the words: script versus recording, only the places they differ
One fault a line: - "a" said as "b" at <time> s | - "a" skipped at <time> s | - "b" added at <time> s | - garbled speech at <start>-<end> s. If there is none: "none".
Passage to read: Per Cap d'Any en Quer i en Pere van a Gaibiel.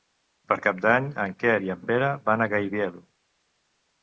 none